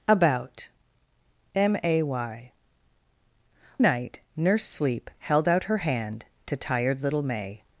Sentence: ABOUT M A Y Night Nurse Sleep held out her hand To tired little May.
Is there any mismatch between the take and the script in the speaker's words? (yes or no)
no